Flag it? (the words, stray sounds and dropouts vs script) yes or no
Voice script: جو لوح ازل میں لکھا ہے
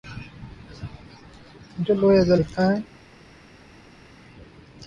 yes